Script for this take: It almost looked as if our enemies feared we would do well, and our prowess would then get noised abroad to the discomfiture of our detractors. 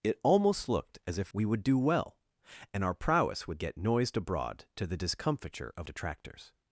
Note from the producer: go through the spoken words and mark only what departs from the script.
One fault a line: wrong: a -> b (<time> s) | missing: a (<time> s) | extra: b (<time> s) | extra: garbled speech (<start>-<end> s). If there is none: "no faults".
missing: our enemies feared (1.3 s)
missing: then (3.6 s)
missing: our (5.9 s)